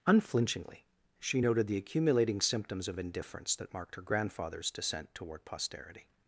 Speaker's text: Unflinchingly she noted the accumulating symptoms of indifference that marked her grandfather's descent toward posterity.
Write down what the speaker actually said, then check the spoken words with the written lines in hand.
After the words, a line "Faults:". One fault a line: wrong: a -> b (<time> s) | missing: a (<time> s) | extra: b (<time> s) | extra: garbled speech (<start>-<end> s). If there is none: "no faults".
Unflinchingly she noted the accumulating symptoms of indifference that marked her grandfather's descent toward posterity.
Faults:
no faults